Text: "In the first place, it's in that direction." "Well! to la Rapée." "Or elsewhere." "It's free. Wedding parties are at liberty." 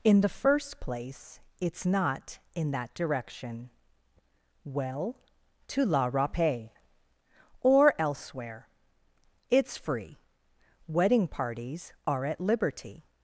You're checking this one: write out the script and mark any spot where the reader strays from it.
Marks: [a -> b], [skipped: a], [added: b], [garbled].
"In the first place, it's [added: not] in that direction." "Well! to la Rapée." "Or elsewhere." "It's free. Wedding parties are at liberty."